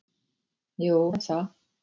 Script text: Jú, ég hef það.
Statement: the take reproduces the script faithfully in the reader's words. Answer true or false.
false